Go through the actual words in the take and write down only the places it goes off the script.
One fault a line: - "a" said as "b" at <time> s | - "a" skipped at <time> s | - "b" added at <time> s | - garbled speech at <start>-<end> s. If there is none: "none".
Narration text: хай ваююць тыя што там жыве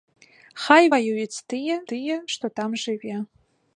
- "тыя" added at 1.9 s